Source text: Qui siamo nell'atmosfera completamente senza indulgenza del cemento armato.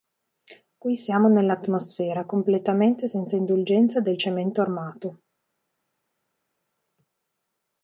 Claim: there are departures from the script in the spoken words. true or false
false